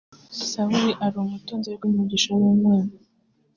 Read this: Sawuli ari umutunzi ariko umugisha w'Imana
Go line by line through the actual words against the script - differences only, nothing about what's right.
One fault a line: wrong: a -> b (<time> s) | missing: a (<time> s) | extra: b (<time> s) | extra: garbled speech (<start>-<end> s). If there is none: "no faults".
no faults